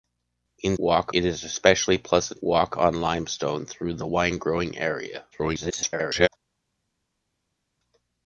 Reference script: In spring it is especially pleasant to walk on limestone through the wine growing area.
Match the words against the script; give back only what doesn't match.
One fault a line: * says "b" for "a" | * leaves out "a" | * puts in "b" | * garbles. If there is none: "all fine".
* says "walk" for "spring"
* leaves out "to"
* garbles